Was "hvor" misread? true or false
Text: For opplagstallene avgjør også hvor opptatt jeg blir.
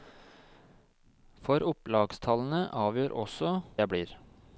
true